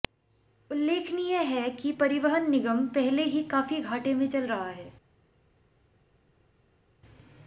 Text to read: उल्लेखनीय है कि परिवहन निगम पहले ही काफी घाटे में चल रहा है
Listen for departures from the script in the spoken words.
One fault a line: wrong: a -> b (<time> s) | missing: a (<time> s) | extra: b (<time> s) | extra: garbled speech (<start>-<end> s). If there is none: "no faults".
no faults